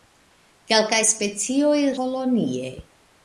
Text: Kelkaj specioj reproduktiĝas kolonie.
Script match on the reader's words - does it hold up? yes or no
no